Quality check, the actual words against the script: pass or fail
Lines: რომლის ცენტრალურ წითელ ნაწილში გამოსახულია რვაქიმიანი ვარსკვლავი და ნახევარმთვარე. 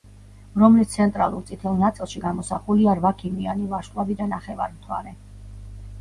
pass